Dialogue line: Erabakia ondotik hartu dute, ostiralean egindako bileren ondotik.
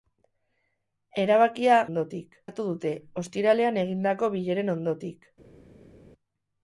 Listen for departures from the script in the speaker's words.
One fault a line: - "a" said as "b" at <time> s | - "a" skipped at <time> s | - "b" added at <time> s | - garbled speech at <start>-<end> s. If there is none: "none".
none